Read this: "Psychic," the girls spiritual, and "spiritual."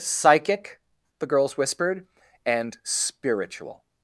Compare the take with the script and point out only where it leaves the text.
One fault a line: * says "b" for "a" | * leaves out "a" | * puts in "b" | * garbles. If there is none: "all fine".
* says "whispered" for "spiritual"